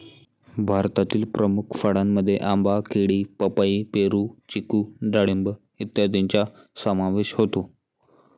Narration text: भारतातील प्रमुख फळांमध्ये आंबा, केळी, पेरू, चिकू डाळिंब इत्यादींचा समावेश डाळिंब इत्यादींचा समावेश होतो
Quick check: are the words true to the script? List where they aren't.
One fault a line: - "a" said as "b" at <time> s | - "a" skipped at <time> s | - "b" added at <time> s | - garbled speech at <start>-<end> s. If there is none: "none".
- "पपई" added at 3.4 s
- "डाळिंब इत्यादींचा समावेश" skipped at 7.3 s